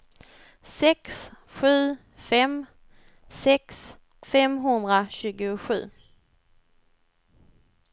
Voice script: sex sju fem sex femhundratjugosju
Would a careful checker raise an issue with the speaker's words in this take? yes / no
no